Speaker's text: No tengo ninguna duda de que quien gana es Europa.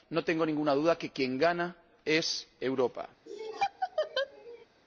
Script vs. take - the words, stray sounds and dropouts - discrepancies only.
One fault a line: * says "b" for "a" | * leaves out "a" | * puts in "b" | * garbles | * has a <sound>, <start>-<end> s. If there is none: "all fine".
* has a laugh, 3.3-4.7 s